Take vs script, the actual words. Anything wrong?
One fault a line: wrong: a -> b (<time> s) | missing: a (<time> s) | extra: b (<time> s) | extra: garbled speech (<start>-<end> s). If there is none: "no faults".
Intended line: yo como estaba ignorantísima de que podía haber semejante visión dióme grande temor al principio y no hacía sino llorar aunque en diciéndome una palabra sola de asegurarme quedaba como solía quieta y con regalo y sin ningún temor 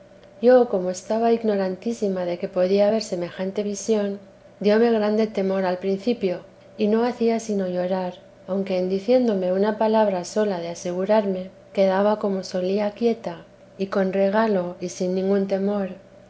no faults